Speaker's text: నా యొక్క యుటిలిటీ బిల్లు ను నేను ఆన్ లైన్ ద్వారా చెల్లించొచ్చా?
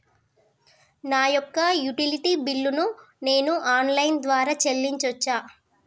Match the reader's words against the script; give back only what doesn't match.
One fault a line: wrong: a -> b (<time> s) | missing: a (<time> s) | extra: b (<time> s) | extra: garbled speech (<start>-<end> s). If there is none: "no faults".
no faults